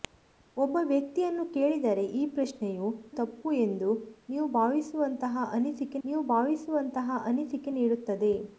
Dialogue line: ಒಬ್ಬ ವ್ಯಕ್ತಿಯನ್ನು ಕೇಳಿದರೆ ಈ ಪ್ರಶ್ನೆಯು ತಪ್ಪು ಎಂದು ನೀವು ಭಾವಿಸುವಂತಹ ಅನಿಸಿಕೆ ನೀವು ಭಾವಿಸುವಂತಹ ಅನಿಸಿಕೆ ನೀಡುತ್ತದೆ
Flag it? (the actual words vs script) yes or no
no